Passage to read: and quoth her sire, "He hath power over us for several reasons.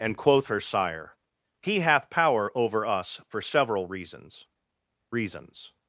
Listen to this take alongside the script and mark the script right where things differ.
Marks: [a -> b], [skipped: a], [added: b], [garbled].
and quoth her sire, "He hath power over us for several reasons. [added: reasons]